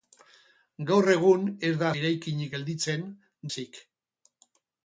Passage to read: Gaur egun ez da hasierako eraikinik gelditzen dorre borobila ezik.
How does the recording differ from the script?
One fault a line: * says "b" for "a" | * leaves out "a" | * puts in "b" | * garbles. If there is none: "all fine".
* leaves out "hasierako"
* leaves out "dorre borobila"